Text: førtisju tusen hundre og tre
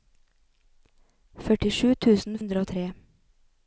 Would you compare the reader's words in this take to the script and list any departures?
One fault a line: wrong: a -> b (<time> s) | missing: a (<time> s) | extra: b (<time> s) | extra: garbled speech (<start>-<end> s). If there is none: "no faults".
no faults